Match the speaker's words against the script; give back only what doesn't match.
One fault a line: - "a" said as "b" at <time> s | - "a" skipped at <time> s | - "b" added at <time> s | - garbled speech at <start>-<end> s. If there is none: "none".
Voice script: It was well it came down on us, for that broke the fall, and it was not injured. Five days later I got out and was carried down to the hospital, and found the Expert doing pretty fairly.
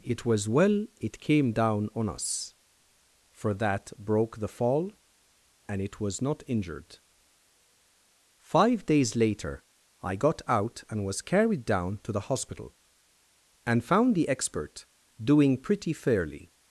none